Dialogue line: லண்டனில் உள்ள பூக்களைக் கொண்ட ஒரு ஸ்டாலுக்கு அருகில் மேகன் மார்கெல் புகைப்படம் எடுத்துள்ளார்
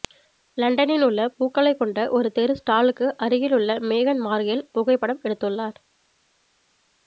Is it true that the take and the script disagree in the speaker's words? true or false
true